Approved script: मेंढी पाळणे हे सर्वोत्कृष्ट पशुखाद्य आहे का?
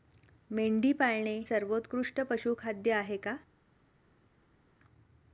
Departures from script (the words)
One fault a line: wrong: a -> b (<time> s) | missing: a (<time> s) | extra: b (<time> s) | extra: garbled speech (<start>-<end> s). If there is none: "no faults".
missing: हे (1.4 s)